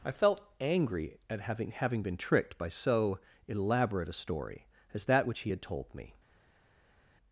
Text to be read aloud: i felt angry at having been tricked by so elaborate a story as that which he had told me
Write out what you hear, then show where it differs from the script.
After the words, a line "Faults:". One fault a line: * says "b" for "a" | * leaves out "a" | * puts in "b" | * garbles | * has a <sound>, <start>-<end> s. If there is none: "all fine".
i felt angry at having having been tricked by so elaborate a story as that which he had told me
Faults:
* puts in "having"